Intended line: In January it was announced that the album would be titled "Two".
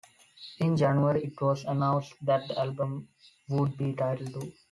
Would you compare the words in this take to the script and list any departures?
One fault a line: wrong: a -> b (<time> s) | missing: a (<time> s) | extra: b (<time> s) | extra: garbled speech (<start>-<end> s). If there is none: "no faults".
no faults